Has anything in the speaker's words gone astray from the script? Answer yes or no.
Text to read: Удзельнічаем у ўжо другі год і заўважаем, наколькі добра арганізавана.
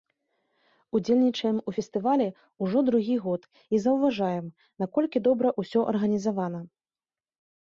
yes